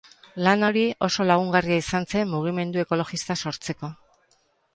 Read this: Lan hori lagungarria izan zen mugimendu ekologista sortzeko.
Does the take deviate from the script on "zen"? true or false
false